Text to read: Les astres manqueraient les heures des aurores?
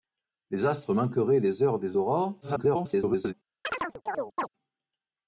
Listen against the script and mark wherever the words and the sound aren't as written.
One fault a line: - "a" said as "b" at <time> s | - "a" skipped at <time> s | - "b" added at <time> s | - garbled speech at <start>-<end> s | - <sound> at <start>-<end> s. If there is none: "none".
- garbled speech at 2.4-3.3 s
- chirp at 3.6-4.5 s